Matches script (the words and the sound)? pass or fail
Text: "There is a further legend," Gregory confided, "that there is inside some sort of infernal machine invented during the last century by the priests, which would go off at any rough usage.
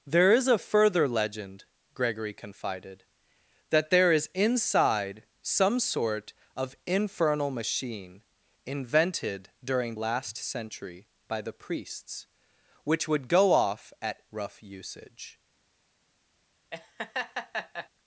fail